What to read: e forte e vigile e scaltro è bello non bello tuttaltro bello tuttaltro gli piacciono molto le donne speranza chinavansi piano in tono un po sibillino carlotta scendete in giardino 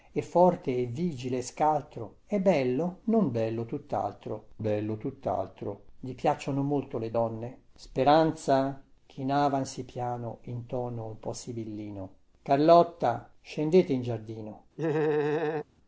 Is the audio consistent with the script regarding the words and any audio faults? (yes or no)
no